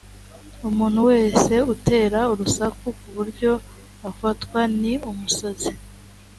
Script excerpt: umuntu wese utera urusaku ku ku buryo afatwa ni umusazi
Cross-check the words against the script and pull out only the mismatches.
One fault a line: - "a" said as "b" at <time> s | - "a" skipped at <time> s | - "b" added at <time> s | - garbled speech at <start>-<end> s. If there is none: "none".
- "ku" skipped at 3.1 s